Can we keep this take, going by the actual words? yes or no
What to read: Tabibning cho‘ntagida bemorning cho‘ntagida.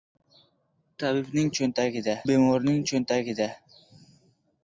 yes